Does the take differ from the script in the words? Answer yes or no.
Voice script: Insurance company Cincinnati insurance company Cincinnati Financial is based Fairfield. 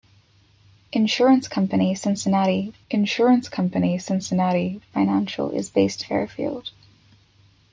no